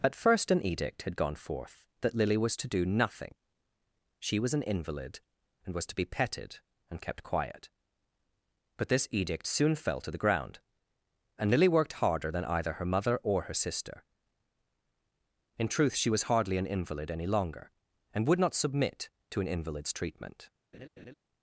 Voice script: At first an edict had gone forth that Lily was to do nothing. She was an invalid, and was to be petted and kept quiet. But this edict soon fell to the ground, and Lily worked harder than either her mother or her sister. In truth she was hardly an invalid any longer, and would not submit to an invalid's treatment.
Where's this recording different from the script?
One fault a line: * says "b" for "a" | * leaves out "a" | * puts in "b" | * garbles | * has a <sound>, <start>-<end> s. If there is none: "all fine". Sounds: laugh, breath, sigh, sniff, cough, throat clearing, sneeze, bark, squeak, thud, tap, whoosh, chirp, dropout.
* has a laugh, 20.7-21.1 s